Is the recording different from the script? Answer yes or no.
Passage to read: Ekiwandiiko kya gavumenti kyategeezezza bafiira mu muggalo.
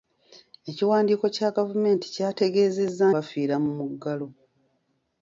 no